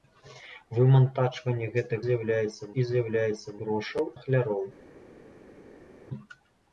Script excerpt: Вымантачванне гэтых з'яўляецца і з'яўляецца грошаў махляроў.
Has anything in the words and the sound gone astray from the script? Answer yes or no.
no